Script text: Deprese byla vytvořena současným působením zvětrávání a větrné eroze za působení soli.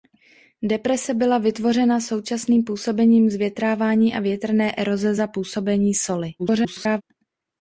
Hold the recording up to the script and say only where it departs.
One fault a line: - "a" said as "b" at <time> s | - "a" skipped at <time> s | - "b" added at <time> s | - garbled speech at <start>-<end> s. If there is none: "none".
- garbled speech at 6.4-7.0 s